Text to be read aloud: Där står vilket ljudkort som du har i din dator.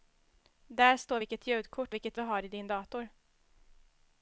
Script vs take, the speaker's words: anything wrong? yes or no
yes